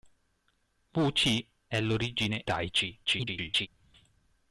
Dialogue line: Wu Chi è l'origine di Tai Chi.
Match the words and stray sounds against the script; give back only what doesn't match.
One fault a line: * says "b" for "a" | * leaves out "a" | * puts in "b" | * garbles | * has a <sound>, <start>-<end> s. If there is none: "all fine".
* leaves out "di"
* garbles